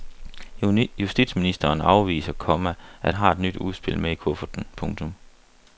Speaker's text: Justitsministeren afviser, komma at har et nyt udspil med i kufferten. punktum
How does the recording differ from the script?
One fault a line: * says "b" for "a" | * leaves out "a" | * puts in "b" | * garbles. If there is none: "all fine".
all fine